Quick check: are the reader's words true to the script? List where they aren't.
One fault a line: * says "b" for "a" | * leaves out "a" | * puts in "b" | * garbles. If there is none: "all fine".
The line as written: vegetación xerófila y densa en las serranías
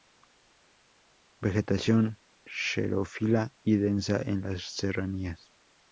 all fine